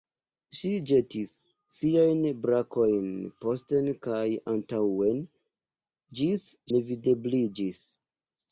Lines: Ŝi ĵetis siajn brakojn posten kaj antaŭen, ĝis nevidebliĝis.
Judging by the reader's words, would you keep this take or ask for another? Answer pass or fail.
pass